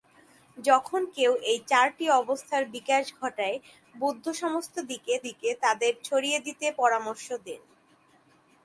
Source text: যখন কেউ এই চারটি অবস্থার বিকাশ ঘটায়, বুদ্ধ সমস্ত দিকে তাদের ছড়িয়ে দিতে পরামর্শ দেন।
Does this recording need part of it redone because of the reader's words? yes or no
yes